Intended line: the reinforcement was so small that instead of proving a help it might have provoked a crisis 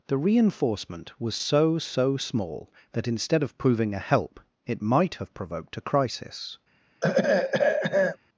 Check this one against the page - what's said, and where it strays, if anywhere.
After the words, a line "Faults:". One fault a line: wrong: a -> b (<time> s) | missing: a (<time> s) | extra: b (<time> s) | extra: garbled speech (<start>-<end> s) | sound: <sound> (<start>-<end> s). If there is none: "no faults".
the reinforcement was so so small that instead of proving a help it might have provoked a crisis
Faults:
extra: so (1.8 s)
sound: throat clearing (7.0-8.2 s)